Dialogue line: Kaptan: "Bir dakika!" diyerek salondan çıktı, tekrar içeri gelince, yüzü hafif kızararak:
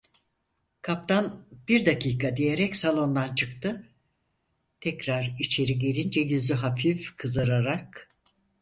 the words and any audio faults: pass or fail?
pass